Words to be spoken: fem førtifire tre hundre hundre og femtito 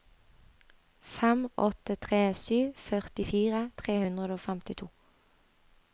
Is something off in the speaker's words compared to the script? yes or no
yes